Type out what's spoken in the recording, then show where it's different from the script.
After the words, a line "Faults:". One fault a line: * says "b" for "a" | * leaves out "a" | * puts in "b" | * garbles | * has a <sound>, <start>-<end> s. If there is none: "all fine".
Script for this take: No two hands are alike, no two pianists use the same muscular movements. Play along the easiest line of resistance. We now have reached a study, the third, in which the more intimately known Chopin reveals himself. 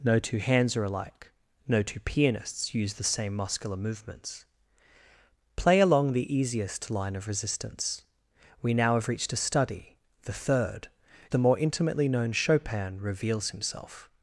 No two hands are alike, no two pianists use the same muscular movements. Play along the easiest line of resistance. We now have reached a study, the third, the more intimately known Chopin reveals himself.
Faults:
* leaves out "in which"